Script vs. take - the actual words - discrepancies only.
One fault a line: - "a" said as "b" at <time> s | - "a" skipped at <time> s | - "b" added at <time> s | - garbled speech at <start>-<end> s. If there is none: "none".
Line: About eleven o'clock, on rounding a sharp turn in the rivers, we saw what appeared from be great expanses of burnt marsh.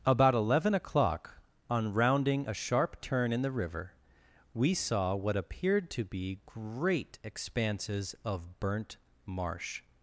- "rivers" said as "river" at 3.5 s
- "from" said as "to" at 5.9 s